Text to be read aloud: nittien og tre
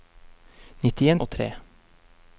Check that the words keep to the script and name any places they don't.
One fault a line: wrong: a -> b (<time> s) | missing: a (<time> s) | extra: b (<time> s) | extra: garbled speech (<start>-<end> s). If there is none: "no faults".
no faults